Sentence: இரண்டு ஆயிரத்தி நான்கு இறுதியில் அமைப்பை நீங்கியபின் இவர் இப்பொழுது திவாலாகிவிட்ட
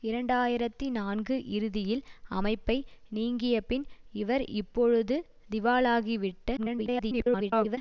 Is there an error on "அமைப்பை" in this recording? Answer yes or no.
no